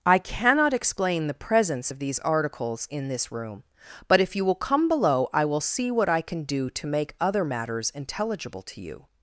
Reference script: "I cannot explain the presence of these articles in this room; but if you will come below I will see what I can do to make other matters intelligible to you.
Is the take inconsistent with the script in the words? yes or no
no